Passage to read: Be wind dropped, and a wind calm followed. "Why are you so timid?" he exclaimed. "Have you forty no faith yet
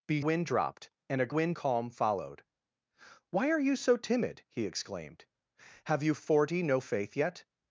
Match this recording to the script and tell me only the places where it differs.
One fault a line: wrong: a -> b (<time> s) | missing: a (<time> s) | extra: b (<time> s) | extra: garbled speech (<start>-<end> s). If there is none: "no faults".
no faults